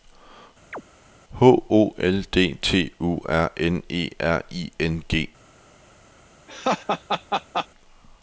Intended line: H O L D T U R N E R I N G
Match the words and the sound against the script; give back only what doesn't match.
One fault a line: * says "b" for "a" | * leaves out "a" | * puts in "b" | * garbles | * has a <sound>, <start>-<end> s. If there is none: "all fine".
* has a chirp, 0.7-0.8 s
* has a laugh, 6.5-7.7 s